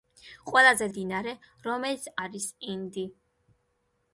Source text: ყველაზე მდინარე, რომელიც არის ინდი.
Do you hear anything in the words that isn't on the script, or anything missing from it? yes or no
no